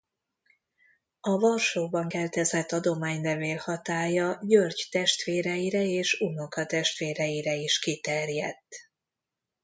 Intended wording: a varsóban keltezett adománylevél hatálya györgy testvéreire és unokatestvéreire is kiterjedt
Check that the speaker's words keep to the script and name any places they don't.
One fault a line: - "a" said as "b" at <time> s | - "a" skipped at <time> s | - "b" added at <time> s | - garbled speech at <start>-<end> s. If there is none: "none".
none